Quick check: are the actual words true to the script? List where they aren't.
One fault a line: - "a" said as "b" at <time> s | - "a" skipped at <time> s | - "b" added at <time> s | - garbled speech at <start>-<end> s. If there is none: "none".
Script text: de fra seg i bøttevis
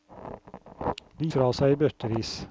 none